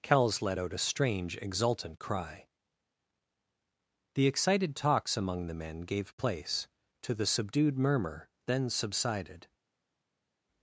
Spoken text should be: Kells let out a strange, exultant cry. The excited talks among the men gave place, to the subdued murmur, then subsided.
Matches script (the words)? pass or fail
pass